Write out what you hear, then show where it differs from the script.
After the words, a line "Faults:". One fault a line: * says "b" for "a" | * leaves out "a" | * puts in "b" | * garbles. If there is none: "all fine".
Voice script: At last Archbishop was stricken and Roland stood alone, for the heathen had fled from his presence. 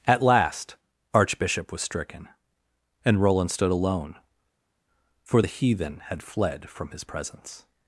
At last Archbishop was stricken and Roland stood alone, for the heathen had fled from his presence.
Faults:
all fine